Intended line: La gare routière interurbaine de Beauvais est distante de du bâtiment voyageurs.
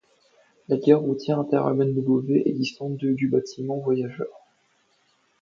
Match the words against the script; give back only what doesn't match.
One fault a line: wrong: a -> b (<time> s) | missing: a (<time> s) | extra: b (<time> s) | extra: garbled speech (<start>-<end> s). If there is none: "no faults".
no faults